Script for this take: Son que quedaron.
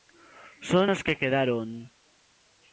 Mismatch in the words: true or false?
true